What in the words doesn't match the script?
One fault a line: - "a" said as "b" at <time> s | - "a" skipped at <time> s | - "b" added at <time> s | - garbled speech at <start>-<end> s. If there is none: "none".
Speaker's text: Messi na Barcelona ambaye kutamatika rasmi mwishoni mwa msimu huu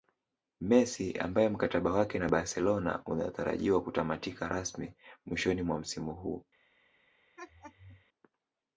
- "ambaye mkataba wake" added at 1.2 s
- "ambaye" said as "unatarajiwa" at 3.0 s